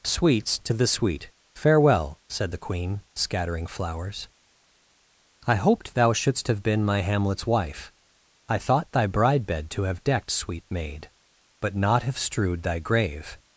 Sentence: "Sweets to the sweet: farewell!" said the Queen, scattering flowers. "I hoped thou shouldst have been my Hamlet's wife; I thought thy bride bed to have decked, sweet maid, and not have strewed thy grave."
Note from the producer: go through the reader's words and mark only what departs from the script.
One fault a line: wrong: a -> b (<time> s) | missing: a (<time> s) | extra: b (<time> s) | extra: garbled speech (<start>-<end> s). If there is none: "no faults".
wrong: and -> but (11.6 s)